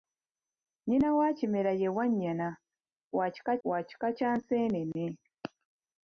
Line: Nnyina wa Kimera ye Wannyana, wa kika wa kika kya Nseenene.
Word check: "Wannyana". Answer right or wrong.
right